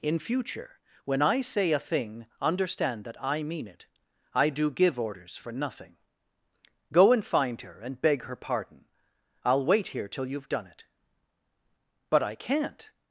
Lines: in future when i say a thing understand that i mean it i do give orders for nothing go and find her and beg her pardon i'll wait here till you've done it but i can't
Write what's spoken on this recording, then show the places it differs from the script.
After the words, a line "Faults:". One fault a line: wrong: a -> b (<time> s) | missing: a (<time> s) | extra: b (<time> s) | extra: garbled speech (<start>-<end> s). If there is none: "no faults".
in future when i say a thing understand that i mean it i do give orders for nothing go and find her and beg her pardon i'll wait here till you've done it but i can't
Faults:
no faults